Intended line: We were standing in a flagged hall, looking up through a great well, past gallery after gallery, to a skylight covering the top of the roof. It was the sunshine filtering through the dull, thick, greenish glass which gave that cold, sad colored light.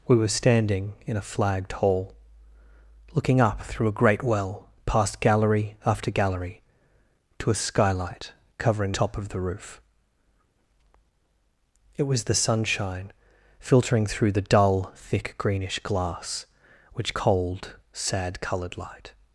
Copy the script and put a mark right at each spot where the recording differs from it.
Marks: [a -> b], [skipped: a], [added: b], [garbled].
We were standing in a flagged hall, looking up through a great well, past gallery after gallery, to a skylight covering [skipped: the] top of the roof. It was the sunshine filtering through the dull, thick, greenish glass which [skipped: gave that] cold, sad colored light.